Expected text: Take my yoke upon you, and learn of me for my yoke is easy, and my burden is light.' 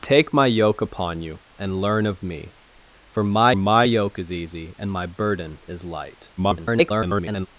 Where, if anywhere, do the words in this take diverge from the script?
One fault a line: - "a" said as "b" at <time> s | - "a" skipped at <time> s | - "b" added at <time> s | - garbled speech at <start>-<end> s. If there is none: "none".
- "my" added at 3.5 s
- garbled speech at 6.4-7.5 s